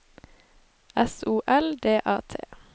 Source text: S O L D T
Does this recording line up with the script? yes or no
no